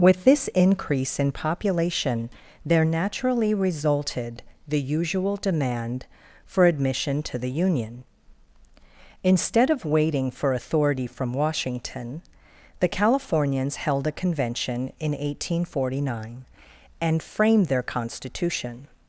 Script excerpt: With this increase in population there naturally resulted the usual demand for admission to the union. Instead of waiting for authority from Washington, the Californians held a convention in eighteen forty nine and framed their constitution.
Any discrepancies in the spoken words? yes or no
no